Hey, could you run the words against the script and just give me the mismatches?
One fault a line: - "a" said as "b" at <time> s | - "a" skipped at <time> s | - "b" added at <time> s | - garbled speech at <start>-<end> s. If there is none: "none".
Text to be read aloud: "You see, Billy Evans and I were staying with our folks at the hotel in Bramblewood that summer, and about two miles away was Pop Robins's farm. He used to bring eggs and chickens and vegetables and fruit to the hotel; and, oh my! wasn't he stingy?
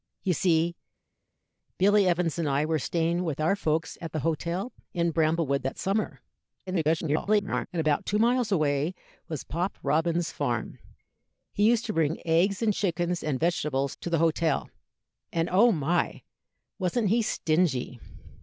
- garbled speech at 6.7-7.7 s
- "and fruit" skipped at 14.0 s